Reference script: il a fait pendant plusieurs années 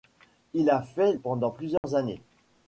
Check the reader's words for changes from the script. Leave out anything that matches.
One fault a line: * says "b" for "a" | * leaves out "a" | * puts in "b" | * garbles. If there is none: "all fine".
all fine